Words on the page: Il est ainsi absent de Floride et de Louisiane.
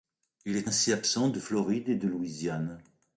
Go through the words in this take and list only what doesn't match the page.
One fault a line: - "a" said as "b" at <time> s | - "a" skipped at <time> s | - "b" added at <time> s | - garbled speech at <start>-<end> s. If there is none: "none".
none